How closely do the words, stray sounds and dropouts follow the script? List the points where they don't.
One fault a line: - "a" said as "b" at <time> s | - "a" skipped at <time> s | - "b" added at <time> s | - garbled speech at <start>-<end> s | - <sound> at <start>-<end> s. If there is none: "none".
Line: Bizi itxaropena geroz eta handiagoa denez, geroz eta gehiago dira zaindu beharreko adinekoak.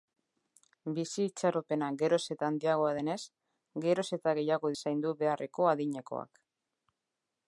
- "dira" skipped at 4.7 s